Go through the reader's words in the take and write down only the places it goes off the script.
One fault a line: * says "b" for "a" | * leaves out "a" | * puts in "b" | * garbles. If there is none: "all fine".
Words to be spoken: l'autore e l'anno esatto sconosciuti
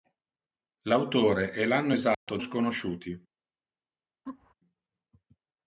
all fine